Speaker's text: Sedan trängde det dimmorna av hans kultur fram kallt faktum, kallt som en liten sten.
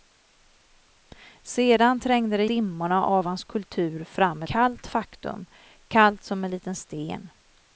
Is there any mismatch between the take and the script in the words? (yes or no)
no